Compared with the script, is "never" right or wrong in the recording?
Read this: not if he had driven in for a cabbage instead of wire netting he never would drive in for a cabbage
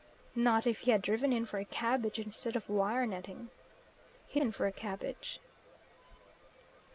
wrong